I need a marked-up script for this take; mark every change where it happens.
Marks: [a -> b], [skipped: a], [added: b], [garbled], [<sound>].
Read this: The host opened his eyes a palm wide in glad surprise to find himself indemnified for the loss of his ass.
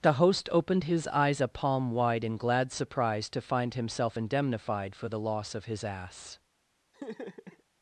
The host opened his eyes a palm wide in glad surprise to find himself indemnified for the loss of his ass. [laugh]